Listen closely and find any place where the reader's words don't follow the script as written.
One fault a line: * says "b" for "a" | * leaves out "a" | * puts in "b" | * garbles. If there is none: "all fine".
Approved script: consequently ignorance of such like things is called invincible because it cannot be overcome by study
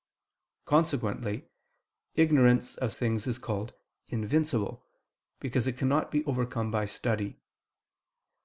* leaves out "such like"